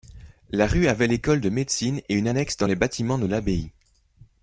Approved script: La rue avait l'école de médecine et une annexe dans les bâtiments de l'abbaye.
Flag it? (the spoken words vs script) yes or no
no